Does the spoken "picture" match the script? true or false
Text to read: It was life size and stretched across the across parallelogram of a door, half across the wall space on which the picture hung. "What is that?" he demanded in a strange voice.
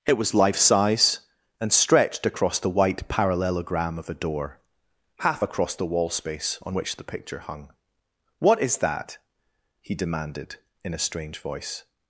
true